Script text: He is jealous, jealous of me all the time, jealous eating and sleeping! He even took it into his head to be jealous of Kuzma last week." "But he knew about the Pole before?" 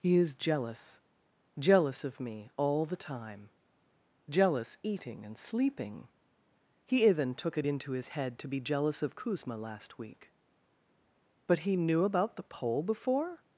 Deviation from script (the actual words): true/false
false